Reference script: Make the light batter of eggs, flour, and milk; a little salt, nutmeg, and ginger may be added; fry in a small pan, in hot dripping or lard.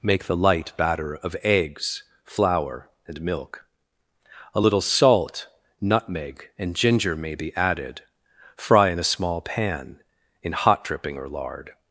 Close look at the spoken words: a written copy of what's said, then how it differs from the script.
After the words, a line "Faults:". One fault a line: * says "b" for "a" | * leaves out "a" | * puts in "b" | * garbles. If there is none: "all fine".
Make the light batter of eggs, flour, and milk; a little salt, nutmeg, and ginger may be added; fry in a small pan, in hot dripping or lard.
Faults:
all fine